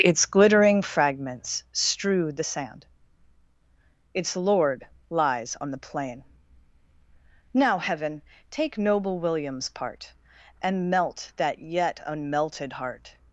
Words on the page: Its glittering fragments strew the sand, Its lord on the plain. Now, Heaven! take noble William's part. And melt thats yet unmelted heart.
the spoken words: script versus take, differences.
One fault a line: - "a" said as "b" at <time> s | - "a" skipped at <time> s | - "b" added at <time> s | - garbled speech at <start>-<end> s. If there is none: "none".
- "lies" added at 5.1 s
- "thats" said as "that" at 11.3 s